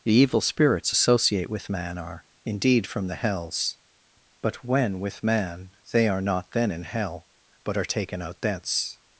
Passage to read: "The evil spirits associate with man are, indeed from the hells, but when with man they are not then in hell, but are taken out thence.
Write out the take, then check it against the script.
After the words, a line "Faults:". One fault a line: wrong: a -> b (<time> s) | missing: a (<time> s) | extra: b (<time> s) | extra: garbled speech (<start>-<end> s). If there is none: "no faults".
"The evil spirits associate with man are, indeed from the hells, but when with man they are not then in hell, but are taken out thence.
Faults:
no faults